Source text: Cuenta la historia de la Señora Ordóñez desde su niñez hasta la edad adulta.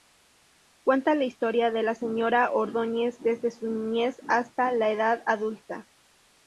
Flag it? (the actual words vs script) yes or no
no